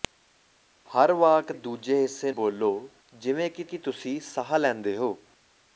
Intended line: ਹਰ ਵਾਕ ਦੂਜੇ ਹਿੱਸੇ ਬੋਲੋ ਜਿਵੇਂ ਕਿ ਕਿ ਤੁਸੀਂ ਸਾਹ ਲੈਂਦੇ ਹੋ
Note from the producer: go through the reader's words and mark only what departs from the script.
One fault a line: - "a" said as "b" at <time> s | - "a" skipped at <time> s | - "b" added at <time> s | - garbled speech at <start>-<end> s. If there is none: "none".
none